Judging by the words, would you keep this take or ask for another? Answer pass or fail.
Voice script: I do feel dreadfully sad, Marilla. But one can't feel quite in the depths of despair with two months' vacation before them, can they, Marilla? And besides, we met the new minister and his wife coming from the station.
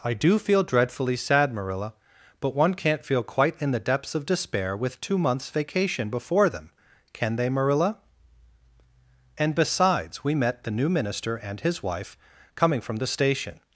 pass